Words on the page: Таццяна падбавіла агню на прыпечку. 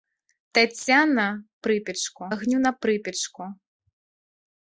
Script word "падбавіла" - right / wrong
wrong